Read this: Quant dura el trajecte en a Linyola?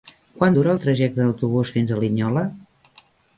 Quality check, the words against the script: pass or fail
fail